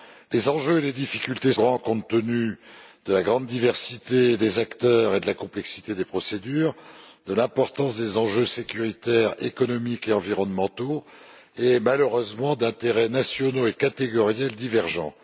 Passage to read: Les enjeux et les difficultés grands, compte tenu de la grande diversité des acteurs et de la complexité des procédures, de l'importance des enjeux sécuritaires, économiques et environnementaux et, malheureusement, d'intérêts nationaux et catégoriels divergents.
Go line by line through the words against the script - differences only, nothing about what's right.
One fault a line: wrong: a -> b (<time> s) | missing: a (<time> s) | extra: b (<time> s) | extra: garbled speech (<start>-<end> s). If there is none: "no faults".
no faults